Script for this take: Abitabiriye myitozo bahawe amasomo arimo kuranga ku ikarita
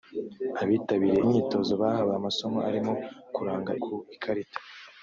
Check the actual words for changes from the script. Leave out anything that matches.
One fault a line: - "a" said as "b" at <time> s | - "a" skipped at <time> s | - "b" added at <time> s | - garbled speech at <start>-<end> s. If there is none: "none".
none